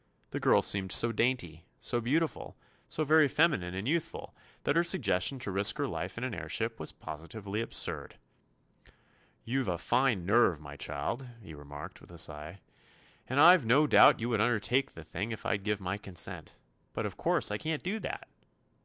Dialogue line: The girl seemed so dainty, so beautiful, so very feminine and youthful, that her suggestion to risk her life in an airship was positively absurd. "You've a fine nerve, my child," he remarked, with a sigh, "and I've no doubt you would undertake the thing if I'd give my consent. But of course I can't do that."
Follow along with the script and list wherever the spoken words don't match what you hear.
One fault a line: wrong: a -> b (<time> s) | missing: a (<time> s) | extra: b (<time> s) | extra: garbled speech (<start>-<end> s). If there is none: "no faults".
no faults